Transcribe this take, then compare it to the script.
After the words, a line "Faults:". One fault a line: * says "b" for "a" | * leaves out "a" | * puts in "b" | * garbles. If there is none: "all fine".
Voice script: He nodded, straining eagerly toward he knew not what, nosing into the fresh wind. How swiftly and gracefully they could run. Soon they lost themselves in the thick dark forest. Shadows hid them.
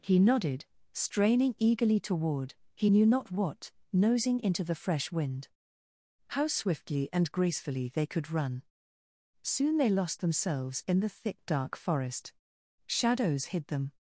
He nodded, straining eagerly toward he knew not what, nosing into the fresh wind. How swiftly and gracefully they could run. Soon they lost themselves in the thick dark forest. Shadows hid them.
Faults:
all fine